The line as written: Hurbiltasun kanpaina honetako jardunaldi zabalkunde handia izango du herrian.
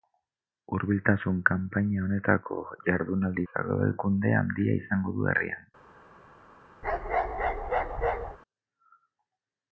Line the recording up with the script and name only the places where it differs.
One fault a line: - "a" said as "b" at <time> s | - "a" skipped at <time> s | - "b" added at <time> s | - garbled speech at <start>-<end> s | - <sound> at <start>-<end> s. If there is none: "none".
- bark at 6.8-8.4 s